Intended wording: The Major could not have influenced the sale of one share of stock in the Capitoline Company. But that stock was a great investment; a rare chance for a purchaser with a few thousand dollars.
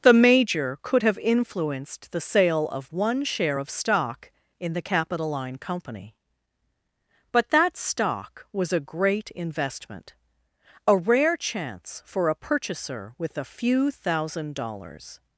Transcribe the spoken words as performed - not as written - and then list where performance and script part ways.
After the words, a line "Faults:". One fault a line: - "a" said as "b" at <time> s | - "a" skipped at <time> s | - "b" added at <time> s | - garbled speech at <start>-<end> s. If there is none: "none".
The Major could have influenced the sale of one share of stock in the Capitoline Company. But that stock was a great investment; a rare chance for a purchaser with a few thousand dollars.
Faults:
- "not" skipped at 1.0 s